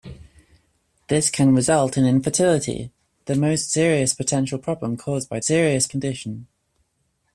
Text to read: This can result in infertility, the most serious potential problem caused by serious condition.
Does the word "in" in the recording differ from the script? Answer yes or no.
no